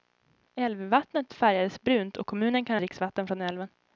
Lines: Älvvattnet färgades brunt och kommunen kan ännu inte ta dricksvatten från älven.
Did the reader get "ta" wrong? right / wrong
wrong